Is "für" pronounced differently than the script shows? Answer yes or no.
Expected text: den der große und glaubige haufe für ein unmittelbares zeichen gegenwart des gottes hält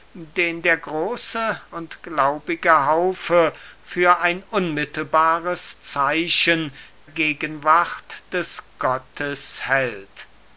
no